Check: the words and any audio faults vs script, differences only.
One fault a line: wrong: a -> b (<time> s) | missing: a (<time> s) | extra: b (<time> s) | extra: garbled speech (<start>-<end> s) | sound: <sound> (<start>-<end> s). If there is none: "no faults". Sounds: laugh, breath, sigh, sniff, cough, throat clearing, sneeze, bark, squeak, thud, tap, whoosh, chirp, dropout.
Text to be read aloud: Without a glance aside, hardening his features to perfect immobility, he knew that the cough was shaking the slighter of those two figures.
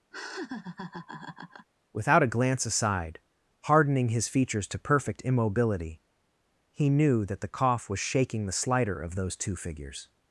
sound: laugh (0.1-1.7 s)